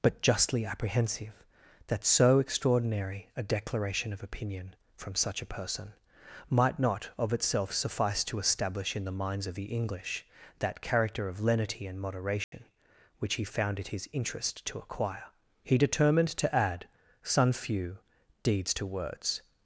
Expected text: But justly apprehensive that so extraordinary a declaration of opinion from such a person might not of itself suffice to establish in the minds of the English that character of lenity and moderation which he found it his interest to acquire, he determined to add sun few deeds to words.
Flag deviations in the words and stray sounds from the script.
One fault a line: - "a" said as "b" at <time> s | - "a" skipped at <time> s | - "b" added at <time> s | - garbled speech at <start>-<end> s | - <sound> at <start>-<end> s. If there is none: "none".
- dropout at 12.4-12.5 s